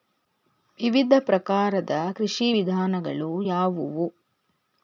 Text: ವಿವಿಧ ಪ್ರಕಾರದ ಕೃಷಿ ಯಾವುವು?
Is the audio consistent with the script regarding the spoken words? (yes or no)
no